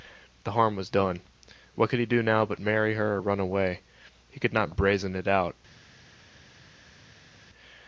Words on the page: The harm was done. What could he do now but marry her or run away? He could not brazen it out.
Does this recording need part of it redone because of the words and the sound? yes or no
no